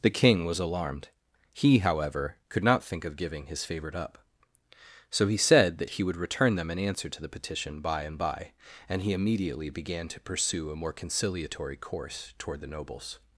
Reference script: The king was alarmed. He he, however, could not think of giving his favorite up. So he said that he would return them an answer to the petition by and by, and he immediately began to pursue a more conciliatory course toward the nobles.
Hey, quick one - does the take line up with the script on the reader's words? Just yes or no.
no